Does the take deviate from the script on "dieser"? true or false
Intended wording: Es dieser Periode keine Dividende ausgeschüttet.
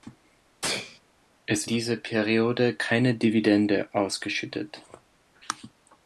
false